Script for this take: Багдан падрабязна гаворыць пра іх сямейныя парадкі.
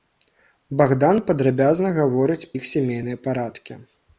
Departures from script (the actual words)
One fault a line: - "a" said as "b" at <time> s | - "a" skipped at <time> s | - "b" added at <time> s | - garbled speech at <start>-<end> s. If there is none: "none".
- "пра" skipped at 2.5 s